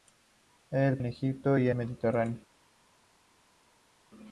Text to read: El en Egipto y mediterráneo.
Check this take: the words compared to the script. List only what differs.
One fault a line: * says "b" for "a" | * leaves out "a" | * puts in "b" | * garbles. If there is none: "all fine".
all fine